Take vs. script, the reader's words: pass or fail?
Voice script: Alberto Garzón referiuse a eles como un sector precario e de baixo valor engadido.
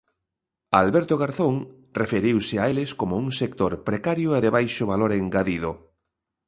pass